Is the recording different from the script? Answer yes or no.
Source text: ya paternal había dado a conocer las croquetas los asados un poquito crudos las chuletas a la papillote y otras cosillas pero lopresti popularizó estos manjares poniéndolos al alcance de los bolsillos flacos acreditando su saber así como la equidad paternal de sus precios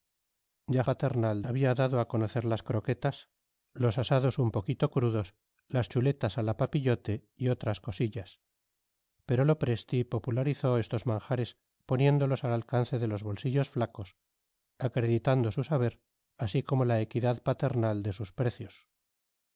no